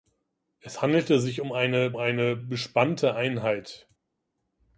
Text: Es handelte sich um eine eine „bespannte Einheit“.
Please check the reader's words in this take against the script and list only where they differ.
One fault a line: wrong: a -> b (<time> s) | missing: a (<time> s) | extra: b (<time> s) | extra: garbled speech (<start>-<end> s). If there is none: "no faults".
no faults